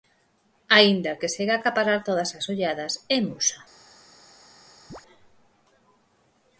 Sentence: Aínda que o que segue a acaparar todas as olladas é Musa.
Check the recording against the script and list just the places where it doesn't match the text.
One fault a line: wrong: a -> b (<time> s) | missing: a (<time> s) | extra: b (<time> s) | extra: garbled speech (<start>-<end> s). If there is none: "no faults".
missing: que (1.1 s)